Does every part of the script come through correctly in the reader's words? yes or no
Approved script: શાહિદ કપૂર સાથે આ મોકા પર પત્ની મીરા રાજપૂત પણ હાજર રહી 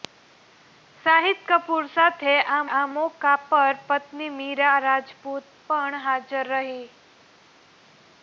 no